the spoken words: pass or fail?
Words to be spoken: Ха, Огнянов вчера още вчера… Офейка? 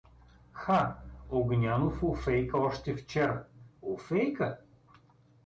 fail